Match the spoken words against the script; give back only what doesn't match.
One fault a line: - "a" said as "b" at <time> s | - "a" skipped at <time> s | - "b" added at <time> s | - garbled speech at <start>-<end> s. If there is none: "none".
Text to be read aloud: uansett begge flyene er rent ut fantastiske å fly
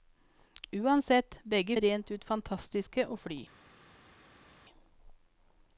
- "flyene" skipped at 1.8 s